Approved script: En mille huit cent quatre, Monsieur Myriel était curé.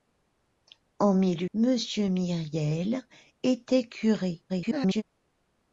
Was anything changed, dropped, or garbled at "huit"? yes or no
yes